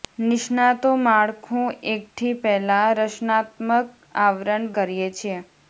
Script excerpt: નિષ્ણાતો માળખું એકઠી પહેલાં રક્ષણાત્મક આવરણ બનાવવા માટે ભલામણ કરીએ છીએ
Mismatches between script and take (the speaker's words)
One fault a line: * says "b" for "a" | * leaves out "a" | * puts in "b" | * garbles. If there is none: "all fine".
* leaves out "બનાવવા માટે ભલામણ"